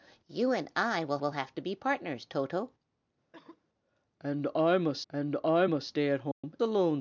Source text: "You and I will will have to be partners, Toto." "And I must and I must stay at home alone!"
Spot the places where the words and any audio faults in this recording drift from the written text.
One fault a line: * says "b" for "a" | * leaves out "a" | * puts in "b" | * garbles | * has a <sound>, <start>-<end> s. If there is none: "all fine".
* has a cough, 3.3-3.7 s
* has a dropout, 6.3-6.4 s